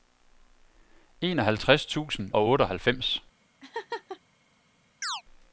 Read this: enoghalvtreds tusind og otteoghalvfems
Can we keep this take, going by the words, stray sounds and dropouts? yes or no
no